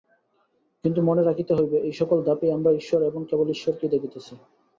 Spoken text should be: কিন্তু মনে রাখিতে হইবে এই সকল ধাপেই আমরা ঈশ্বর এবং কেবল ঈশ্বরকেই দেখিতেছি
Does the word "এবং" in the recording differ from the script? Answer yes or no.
no